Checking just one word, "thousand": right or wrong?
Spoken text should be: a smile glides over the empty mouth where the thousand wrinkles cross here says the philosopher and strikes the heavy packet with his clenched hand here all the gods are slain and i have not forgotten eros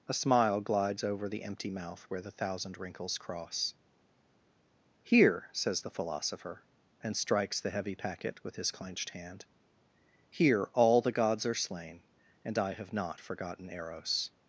right